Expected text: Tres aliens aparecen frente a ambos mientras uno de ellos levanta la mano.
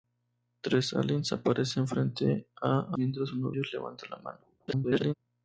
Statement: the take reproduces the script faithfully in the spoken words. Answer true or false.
false